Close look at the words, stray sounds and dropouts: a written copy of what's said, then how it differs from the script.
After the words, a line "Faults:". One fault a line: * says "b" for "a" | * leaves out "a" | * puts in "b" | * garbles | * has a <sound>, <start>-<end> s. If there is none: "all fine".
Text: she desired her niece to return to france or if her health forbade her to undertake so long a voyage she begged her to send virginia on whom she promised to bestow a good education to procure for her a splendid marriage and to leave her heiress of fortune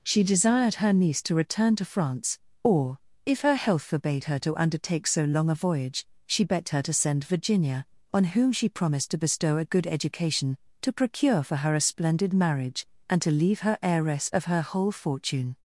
she desired her niece to return to france or if her health forbade her to undertake so long a voyage she begged her to send virginia on whom she promised to bestow a good education to procure for her a splendid marriage and to leave her heiress of her whole fortune
Faults:
* puts in "her whole"